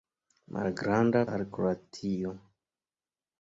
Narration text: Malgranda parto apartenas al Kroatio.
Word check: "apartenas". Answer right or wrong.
wrong